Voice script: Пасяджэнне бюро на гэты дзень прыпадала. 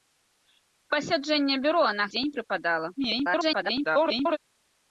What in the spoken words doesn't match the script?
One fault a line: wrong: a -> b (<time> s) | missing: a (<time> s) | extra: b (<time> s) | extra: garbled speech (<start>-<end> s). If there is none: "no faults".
missing: гэты (2.0 s)
extra: garbled speech (3.0-4.4 s)